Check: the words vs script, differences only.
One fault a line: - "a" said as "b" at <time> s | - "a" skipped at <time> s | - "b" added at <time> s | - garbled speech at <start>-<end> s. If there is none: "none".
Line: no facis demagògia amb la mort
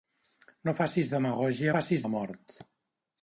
- "amb" said as "facis" at 1.7 s